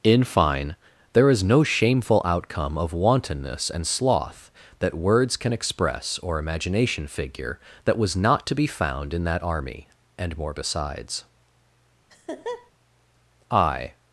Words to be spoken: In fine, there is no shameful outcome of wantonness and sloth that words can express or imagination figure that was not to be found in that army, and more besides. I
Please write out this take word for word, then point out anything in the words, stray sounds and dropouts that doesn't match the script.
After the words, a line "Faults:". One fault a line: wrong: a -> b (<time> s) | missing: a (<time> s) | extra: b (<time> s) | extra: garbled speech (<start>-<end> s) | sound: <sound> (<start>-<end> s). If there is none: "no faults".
In fine, there is no shameful outcome of wantonness and sloth that words can express or imagination figure that was not to be found in that army, and more besides. I
Faults:
sound: laugh (12.1-12.7 s)